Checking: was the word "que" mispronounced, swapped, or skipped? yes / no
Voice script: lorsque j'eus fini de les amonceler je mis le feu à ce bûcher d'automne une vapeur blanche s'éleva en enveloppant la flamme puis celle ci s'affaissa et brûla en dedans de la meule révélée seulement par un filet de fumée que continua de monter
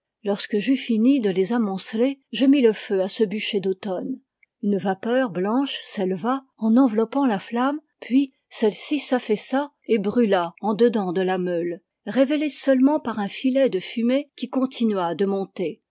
yes